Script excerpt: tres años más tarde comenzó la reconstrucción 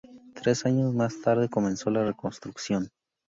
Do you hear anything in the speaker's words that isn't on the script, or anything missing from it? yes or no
no